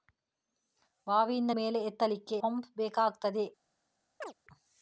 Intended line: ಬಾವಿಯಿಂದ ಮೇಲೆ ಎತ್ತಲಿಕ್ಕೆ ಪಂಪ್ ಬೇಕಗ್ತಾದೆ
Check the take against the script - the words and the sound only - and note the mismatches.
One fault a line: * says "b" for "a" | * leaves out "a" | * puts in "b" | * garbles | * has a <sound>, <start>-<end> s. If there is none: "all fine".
* has a chirp, 4.2-4.3 s